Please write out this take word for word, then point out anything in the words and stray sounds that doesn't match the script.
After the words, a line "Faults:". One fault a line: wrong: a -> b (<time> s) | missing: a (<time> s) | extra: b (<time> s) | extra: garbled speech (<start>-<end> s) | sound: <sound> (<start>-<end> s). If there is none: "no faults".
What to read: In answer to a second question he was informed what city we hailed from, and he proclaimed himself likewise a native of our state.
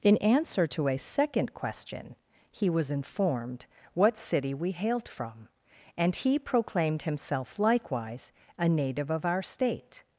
In answer to a second question he was informed what city we hailed from, and he proclaimed himself likewise a native of our state.
Faults:
no faults